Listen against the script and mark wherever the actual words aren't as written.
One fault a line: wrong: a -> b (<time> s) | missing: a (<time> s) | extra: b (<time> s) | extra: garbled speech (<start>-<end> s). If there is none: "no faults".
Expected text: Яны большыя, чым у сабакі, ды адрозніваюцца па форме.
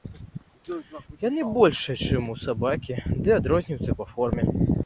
no faults